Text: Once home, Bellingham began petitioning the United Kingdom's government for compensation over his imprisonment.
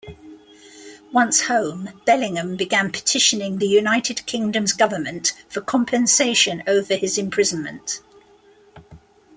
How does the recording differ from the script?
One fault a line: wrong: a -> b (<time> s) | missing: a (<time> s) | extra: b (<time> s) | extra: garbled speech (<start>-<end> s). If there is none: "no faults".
no faults